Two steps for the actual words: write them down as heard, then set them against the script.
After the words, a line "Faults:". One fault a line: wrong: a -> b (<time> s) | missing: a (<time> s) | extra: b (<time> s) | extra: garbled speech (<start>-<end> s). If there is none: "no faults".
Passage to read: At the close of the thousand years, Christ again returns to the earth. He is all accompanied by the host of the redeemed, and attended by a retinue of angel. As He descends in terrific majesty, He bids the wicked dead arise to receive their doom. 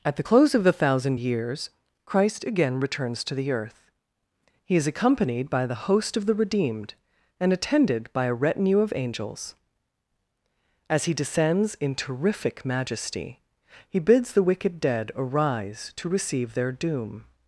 At the close of the thousand years, Christ again returns to the earth. He is accompanied by the host of the redeemed, and attended by a retinue of angels. As He descends in terrific majesty, He bids the wicked dead arise to receive their doom.
Faults:
missing: all (4.9 s)
wrong: angel -> angels (8.9 s)